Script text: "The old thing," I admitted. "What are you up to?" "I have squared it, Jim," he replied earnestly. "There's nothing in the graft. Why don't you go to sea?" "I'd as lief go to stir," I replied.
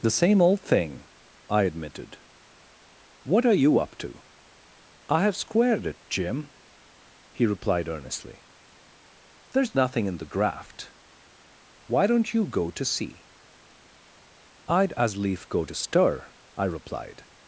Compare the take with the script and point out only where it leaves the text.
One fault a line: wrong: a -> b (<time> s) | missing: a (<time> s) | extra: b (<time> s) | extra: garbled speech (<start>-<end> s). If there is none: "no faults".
extra: same (0.1 s)